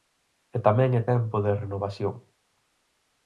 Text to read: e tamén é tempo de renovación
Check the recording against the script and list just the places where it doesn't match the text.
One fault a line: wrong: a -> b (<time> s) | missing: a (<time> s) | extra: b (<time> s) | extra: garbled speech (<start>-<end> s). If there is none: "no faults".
no faults